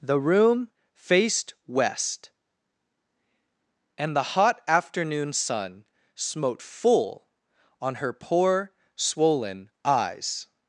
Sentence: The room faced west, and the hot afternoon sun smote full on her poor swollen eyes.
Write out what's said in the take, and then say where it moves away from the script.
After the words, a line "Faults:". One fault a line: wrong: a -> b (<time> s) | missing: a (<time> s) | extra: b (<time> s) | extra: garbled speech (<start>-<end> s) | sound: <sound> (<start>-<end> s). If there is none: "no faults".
The room faced west, and the hot afternoon sun smote full on her poor swollen eyes.
Faults:
no faults